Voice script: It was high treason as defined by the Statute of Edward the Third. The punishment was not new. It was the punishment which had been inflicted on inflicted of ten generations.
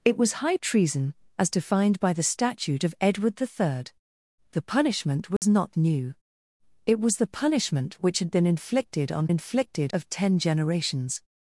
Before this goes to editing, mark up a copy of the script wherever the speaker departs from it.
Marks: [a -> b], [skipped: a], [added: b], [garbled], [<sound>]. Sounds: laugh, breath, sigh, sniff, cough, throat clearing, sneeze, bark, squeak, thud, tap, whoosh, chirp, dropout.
It was high treason as defined by the Statute of Edward the Third. The punishment was [dropout] not new. It was the punishment which had been inflicted on inflicted of ten generations.